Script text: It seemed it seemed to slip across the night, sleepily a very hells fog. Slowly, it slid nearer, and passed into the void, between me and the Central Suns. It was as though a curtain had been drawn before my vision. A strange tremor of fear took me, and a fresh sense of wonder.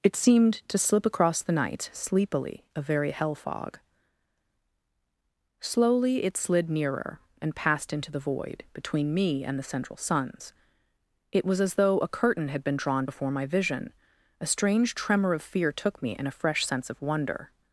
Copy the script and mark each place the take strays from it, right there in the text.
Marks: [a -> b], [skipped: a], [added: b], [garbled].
It seemed [skipped: it seemed] to slip across the night, sleepily a very [hells -> hell] fog. Slowly, it slid nearer, and passed into the void, between me and the Central Suns. It was as though a curtain had been drawn before my vision. A strange tremor of fear took me, and a fresh sense of wonder.